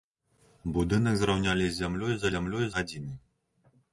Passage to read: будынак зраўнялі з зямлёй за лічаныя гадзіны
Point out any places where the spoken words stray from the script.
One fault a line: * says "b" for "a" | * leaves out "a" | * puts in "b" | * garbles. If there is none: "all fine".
* says "зямлёй" for "лічаныя"